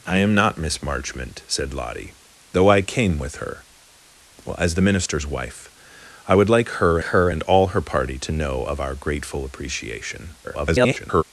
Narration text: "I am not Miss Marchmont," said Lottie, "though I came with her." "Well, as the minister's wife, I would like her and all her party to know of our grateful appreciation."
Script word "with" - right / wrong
right